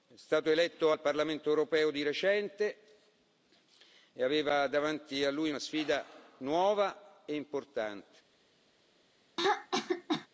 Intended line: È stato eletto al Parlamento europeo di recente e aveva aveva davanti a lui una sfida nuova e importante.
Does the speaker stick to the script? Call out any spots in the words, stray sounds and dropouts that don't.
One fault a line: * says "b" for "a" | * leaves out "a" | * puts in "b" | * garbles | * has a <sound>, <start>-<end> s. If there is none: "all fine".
* leaves out "aveva"
* has a throat clearing, 9.4-10.3 s